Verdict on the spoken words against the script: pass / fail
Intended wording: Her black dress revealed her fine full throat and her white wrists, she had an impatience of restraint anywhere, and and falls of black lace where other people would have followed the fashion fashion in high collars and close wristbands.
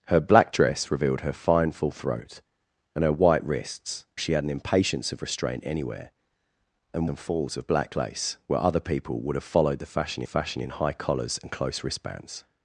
pass